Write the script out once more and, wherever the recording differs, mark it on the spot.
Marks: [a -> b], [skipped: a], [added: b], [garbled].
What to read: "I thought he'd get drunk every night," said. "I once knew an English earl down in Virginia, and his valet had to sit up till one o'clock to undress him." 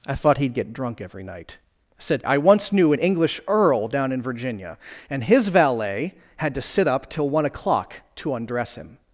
"I thought he'd get drunk every night," said. "I once knew an English earl down in Virginia, and his valet had to sit up till one o'clock to undress him."